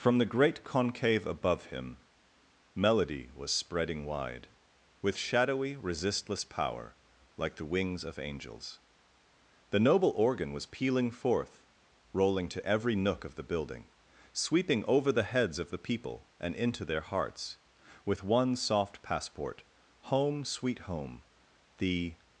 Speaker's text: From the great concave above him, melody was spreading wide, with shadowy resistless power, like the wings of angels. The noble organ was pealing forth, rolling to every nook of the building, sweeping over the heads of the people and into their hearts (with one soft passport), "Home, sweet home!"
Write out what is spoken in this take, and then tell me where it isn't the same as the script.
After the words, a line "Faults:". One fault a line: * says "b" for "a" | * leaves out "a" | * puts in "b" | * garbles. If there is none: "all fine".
From the great concave above him, melody was spreading wide, with shadowy resistless power, like the wings of angels. The noble organ was pealing forth, rolling to every nook of the building, sweeping over the heads of the people and into their hearts (with one soft passport), "Home, sweet home!" The
Faults:
* puts in "The"